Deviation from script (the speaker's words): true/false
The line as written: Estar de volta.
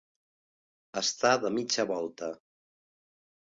true